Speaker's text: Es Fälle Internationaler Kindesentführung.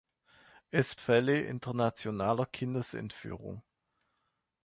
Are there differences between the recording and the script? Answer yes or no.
no